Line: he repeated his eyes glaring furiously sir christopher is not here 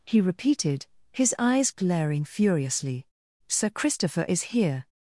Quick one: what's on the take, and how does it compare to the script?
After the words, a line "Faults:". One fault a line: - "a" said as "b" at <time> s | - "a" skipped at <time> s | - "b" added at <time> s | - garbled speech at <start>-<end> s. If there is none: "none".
he repeated his eyes glaring furiously sir christopher is here
Faults:
- "not" skipped at 4.5 s